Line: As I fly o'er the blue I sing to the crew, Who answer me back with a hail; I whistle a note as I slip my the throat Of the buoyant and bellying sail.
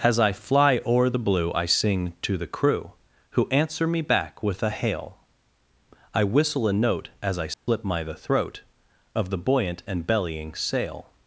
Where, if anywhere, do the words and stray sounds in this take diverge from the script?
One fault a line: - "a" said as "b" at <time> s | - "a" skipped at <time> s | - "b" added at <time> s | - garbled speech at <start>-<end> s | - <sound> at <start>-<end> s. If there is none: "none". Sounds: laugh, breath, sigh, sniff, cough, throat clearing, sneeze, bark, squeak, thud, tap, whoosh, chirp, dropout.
- dropout at 7.5-7.7 s